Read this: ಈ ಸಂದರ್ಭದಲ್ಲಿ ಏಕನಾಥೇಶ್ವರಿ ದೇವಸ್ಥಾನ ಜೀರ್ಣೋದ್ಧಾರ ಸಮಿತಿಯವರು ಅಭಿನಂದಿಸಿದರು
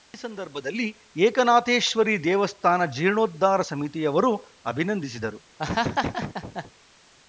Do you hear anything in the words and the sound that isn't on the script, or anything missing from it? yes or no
yes